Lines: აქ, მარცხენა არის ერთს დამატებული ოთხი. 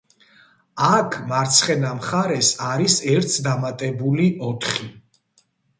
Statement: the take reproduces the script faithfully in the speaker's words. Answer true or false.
false